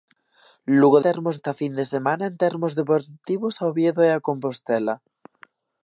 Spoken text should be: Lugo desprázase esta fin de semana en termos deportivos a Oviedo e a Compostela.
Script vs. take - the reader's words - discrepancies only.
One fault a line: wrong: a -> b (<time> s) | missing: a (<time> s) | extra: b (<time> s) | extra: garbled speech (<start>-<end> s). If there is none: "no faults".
wrong: desprázase -> termos (1.1 s)